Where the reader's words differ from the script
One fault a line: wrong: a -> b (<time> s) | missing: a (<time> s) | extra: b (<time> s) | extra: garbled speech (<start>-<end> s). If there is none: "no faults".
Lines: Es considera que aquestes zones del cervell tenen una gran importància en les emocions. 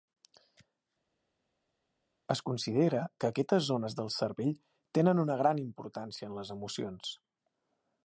no faults